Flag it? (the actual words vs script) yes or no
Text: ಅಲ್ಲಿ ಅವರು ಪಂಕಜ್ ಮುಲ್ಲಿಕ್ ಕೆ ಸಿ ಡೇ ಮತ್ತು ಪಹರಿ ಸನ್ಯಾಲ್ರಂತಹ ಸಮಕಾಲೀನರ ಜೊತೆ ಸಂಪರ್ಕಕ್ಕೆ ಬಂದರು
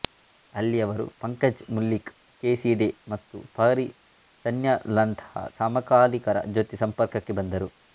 no